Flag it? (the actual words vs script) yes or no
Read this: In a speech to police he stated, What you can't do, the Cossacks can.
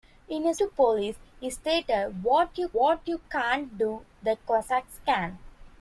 yes